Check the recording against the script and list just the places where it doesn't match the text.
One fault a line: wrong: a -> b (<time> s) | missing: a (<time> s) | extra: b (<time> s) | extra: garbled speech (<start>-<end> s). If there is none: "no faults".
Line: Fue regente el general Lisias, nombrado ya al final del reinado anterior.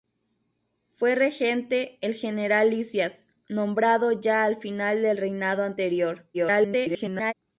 extra: garbled speech (6.3-7.3 s)